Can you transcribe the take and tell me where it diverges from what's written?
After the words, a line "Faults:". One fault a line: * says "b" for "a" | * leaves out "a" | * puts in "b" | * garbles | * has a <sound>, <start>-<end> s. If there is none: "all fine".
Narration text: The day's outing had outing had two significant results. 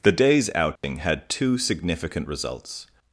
The day's outing had two significant results.
Faults:
* has a dropout, 0.8-0.8 s
* leaves out "outing had"